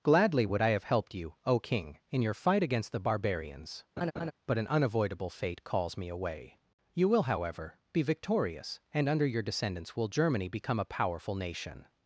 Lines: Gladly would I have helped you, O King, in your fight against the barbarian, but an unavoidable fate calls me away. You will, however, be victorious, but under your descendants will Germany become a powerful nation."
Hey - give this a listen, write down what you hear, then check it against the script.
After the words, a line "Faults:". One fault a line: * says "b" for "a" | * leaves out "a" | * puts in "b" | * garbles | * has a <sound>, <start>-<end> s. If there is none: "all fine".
Gladly would I have helped you, O King, in your fight against the barbarians, but an unavoidable fate calls me away. You will, however, be victorious, and under your descendants will Germany become a powerful nation."
Faults:
* says "barbarians" for "barbarian"
* has a laugh, 4.0-4.3 s
* says "and" for "but"